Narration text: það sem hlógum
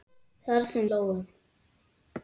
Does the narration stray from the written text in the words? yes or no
no